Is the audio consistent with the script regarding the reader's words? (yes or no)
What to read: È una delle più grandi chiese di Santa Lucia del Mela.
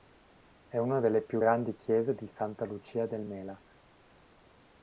yes